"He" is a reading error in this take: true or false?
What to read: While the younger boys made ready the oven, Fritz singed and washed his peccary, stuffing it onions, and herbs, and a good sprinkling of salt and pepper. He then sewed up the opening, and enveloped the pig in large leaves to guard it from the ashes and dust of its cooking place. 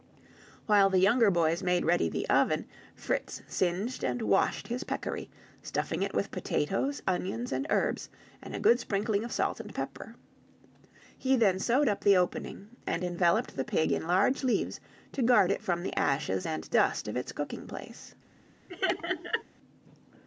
false